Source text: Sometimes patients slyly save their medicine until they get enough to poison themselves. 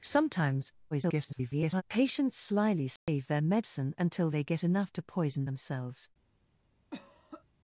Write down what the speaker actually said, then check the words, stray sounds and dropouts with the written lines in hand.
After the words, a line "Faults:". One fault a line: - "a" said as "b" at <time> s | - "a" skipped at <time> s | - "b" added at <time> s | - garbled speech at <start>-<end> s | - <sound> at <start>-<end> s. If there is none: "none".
Sometimes [garbled] patients slyly save their medicine until they get enough to poison themselves.
Faults:
- garbled speech at 0.9-1.8 s
- dropout at 3.0-3.1 s
- cough at 6.9-7.4 s